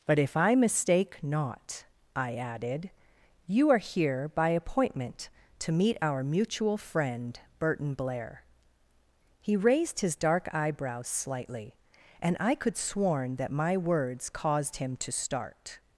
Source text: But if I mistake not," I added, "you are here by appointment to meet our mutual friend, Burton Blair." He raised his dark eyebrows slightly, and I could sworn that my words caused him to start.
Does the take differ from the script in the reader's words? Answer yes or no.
no